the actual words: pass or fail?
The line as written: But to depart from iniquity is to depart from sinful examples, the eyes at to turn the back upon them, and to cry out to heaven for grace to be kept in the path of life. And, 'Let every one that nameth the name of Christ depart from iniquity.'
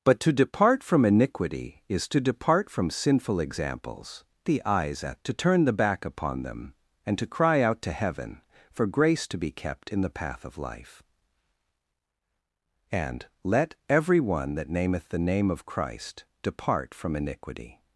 pass